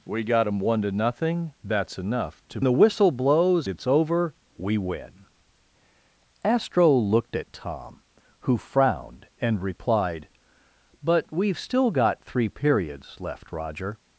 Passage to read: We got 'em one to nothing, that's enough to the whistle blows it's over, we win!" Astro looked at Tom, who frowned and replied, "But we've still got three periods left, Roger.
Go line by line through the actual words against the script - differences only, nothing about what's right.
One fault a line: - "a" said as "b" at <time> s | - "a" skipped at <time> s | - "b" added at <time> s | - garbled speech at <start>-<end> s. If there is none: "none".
none